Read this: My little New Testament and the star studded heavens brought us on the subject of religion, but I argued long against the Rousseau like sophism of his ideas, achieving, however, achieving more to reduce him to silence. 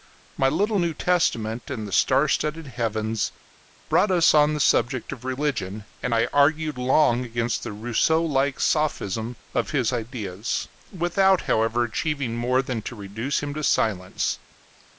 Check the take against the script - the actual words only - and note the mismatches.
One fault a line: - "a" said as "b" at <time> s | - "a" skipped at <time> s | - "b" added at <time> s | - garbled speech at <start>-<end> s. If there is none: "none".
- "but" said as "and" at 6.0 s
- "achieving" said as "without" at 10.9 s
- "than" added at 12.6 s